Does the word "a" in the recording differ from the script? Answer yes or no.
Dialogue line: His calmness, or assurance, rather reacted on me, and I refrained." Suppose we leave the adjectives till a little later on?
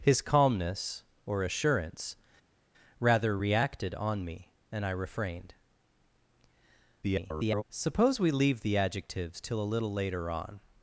no